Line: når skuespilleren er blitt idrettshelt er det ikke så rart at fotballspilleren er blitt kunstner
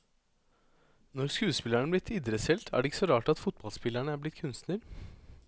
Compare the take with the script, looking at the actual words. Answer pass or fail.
pass